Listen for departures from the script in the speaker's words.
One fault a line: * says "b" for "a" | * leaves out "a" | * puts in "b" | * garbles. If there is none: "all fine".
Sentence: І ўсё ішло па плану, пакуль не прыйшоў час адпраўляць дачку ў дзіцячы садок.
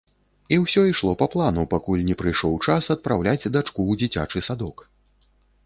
all fine